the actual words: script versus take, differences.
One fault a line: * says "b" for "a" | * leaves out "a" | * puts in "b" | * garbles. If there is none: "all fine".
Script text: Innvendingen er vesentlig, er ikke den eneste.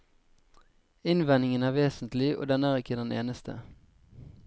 * puts in "og den"